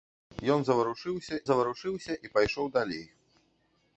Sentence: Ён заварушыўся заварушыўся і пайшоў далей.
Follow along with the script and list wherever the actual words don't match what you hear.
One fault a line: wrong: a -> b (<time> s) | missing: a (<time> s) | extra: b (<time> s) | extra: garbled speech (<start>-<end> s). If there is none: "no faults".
no faults